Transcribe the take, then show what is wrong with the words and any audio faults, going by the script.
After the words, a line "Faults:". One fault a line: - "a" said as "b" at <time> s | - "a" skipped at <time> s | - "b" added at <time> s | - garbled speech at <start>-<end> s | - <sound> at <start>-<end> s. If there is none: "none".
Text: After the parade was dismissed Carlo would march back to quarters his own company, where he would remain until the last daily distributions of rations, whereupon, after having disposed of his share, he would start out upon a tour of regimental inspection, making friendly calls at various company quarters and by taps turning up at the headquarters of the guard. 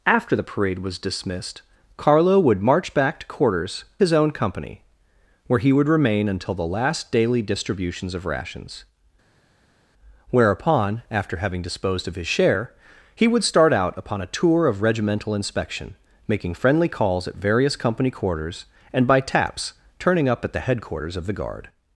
After the parade was dismissed Carlo would march back to quarters his own company, where he would remain until the last daily distributions of rations, whereupon, after having disposed of his share, he would start out upon a tour of regimental inspection, making friendly calls at various company quarters and by taps turning up at the headquarters of the guard.
Faults:
none